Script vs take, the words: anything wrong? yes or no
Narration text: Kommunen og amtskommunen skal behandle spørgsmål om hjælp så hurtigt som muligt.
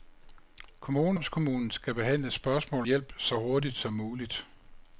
yes